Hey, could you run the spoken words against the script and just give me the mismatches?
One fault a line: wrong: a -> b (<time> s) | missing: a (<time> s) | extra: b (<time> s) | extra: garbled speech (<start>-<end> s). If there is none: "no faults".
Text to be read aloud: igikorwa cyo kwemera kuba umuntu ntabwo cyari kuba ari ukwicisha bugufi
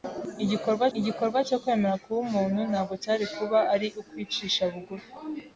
extra: igikorwa (1.0 s)